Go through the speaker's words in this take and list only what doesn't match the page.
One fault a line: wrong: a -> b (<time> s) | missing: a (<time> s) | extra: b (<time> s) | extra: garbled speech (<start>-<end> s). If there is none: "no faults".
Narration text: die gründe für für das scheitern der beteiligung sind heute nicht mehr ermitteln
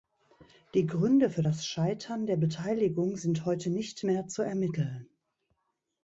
missing: für (1.4 s)
extra: zu (4.3 s)